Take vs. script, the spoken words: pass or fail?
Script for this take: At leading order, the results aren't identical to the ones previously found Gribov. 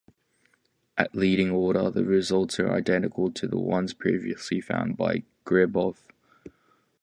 fail